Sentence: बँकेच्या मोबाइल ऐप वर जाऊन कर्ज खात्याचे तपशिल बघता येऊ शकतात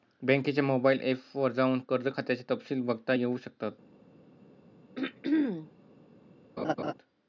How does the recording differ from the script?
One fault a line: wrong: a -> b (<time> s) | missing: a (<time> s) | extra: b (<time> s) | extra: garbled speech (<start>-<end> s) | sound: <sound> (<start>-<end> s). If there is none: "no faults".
sound: throat clearing (4.9-5.7 s)
sound: laugh (6.6-6.9 s)